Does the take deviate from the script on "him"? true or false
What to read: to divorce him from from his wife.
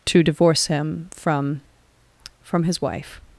false